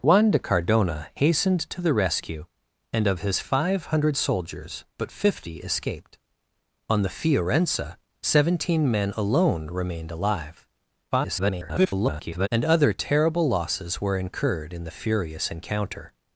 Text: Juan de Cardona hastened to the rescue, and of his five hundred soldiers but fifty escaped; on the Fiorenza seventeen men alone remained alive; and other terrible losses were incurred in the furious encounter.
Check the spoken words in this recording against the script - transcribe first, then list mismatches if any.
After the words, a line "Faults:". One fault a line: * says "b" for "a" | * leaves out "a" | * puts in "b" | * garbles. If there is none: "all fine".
Juan de Cardona hastened to the rescue, and of his five hundred soldiers but fifty escaped; on the Fiorenza seventeen men alone remained alive; [garbled] and other terrible losses were incurred in the furious encounter.
Faults:
* garbles